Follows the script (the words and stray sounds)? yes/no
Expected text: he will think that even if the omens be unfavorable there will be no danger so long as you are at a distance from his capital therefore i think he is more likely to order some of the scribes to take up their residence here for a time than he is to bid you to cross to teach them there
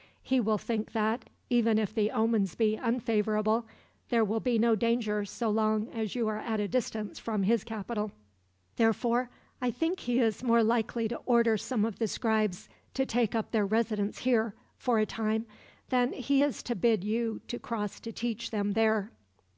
yes